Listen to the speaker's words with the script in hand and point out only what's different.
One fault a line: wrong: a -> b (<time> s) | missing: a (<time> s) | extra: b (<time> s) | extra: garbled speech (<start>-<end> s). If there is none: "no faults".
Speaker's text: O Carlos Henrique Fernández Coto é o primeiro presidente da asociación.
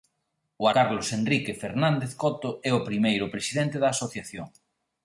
no faults